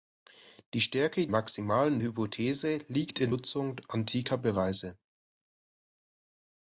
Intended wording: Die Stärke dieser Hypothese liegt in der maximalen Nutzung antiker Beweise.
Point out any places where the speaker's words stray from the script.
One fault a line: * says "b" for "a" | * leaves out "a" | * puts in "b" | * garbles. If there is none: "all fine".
* says "maximalen" for "dieser"
* leaves out "der maximalen"